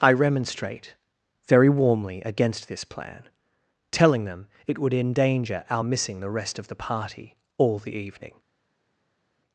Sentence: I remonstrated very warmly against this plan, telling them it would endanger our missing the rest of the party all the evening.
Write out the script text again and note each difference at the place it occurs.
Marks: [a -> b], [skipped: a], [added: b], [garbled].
I [remonstrated -> remonstrate] very warmly against this plan, telling them it would endanger our missing the rest of the party all the evening.